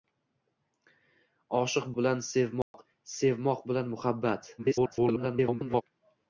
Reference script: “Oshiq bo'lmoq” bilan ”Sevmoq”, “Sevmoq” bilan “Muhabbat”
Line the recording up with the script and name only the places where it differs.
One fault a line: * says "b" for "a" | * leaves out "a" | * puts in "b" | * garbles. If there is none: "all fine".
* leaves out "bo'lmoq"
* garbles